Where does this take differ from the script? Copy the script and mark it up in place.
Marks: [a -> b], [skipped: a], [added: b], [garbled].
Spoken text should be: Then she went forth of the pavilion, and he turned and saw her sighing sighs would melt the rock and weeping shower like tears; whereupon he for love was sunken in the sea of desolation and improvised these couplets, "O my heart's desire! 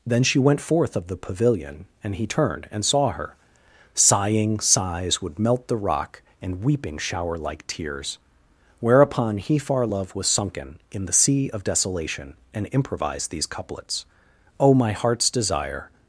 Then she went forth of the pavilion, and he turned and saw her sighing sighs would melt the rock and weeping shower like tears; whereupon he [for -> far] love was sunken in the sea of desolation and improvised these couplets, "O my heart's desire!